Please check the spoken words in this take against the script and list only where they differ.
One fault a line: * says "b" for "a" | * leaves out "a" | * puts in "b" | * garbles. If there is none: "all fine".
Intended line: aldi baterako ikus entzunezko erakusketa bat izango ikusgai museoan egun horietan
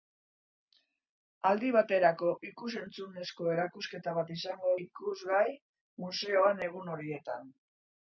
all fine